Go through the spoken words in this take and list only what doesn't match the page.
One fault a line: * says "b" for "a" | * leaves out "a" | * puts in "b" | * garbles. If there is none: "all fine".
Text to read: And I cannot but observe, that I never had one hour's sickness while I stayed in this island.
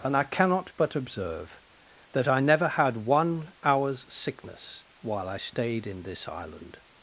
all fine